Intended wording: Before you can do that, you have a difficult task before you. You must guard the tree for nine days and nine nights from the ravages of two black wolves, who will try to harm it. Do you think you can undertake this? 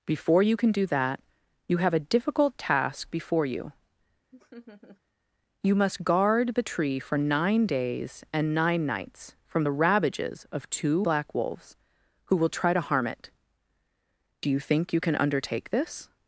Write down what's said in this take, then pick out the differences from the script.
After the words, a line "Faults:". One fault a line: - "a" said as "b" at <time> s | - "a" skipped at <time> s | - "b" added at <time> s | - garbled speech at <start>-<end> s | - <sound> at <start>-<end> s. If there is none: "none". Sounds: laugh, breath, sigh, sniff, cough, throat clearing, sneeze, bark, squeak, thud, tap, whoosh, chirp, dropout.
Before you can do that, you have a difficult task before you. You must guard the tree for nine days and nine nights from the ravages of two black wolves, who will try to harm it. Do you think you can undertake this?
Faults:
- laugh at 4.3-5.0 s